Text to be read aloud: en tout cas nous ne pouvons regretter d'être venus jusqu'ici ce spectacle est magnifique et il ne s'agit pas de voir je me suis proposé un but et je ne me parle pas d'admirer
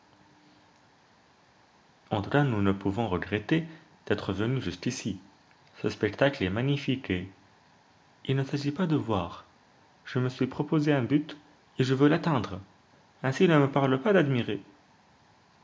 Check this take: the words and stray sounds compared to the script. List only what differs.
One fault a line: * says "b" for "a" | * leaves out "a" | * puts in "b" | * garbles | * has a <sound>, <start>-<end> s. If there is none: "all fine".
* puts in "veux l'atteindre ainsi"